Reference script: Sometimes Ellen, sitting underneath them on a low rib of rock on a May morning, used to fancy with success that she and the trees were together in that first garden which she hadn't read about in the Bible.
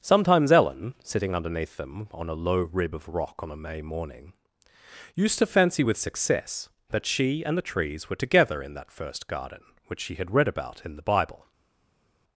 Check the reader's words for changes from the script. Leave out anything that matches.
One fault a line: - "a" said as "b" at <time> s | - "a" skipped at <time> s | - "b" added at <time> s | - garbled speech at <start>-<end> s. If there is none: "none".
- "hadn't" said as "had" at 10.2 s